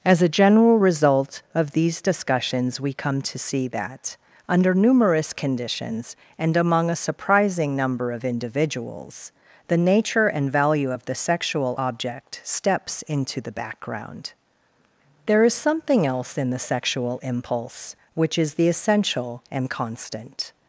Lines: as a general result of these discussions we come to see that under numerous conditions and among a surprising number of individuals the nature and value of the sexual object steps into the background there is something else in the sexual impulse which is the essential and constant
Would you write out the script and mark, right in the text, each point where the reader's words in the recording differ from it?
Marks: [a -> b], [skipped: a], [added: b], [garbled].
as a general result of these discussions we come to see that under numerous conditions and among a surprising number of individuals the nature and value of the sexual object steps into the background there is something else in the sexual impulse which is the essential and constant